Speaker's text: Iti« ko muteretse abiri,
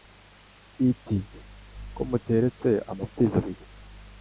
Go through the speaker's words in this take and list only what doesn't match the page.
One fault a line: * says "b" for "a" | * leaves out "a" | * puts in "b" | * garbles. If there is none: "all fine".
* puts in "amapfizi"